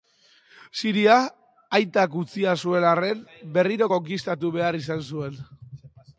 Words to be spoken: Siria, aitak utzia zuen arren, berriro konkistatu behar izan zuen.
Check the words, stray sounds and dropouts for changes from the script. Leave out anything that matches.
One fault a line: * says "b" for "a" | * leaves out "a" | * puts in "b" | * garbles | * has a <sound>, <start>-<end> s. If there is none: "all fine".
all fine